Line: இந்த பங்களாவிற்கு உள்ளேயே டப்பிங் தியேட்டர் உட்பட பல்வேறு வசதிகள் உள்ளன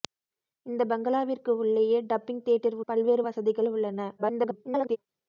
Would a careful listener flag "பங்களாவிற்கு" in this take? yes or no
no